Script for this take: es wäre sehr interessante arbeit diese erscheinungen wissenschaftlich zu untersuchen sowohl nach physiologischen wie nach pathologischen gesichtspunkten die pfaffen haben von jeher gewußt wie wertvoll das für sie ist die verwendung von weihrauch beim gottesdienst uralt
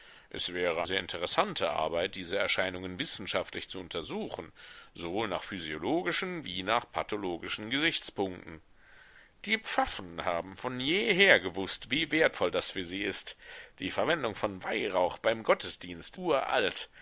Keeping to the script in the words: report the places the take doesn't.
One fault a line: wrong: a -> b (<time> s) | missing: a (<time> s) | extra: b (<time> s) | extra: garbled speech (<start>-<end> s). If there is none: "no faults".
no faults